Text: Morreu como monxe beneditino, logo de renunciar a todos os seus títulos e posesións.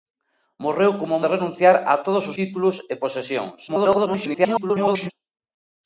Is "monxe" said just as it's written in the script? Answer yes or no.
no